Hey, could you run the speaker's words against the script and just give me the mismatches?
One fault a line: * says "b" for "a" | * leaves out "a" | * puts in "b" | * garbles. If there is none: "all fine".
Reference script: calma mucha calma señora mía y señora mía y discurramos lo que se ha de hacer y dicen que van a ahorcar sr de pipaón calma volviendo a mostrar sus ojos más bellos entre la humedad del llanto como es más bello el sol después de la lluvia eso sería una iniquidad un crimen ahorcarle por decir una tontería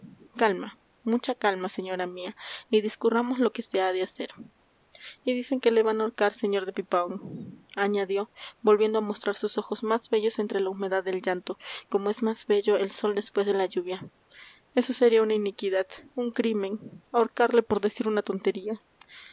* leaves out "señora mía y"
* puts in "le"
* says "añadió" for "calma"